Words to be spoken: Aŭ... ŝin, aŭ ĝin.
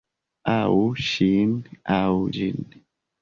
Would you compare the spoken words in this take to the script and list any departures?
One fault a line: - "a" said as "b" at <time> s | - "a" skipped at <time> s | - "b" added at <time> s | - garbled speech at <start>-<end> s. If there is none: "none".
none